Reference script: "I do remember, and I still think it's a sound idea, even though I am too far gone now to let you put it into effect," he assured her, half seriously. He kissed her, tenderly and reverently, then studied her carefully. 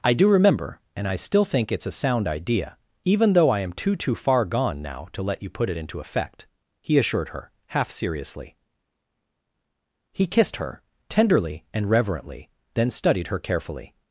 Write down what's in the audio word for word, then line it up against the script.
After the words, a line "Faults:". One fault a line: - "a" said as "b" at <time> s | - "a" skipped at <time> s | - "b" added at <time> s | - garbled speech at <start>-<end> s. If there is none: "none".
"I do remember, and I still think it's a sound idea, even though I am too too far gone now to let you put it into effect," he assured her, half seriously. He kissed her, tenderly and reverently, then studied her carefully.
Faults:
- "too" added at 4.0 s